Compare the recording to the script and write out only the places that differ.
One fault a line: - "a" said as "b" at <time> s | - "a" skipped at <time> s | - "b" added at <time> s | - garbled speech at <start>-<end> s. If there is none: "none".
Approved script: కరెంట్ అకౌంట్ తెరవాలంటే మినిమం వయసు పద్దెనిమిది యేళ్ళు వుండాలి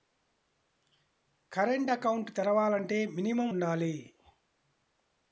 - "వయసు పద్దెనిమిది యేళ్ళు" skipped at 3.5 s